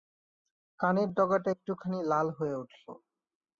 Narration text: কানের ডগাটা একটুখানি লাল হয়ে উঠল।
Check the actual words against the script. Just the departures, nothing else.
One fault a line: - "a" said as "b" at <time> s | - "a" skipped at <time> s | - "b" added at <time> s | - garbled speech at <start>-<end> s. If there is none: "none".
none